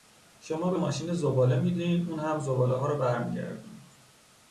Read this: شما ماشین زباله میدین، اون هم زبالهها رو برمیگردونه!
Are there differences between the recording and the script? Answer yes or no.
yes